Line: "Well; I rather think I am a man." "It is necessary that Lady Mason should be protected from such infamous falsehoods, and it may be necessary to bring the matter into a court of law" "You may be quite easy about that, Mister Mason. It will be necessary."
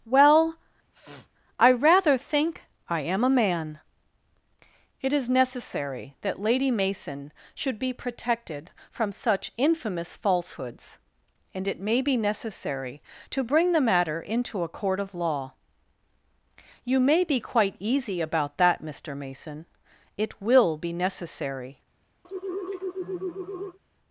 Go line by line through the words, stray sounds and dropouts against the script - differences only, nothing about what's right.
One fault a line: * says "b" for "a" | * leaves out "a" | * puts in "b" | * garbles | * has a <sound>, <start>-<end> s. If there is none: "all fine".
* has a sniff, 0.9-1.3 s
* has a sigh, 22.2-23.8 s